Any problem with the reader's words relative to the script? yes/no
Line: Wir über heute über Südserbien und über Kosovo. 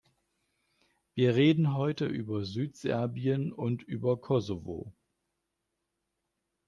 yes